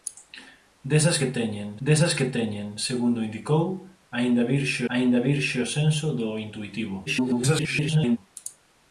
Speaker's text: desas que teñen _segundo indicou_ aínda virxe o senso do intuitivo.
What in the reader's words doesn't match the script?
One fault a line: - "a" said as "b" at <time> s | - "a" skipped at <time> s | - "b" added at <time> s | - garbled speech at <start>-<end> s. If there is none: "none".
- "desas que teñen" added at 1.9 s
- "aínda virxe" added at 4.9 s
- garbled speech at 7.1-8.2 s